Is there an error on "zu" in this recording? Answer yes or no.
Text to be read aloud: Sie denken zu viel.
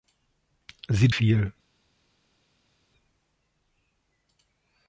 yes